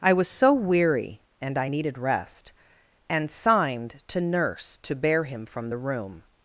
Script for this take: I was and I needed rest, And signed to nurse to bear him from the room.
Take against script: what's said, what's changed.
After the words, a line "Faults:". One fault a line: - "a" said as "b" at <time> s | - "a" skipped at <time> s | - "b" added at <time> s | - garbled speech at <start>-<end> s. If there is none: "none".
I was so weary and I needed rest, And signed to nurse to bear him from the room.
Faults:
- "so weary" added at 0.3 s